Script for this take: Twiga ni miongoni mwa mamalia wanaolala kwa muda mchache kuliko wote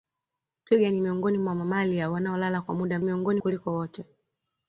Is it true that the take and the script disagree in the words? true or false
true